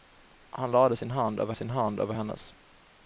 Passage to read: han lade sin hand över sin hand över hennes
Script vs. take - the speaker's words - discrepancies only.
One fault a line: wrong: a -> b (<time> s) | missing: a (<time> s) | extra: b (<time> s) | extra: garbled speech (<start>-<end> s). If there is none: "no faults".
no faults